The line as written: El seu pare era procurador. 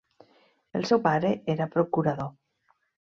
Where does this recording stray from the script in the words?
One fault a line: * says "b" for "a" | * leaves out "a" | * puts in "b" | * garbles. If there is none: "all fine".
all fine